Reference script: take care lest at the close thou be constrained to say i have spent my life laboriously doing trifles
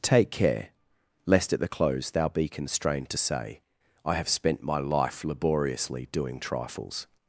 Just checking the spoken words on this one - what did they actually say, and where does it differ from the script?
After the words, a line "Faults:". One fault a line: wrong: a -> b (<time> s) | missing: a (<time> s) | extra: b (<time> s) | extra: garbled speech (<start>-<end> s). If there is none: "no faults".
take care lest at the close thou be constrained to say i have spent my life laboriously doing trifles
Faults:
no faults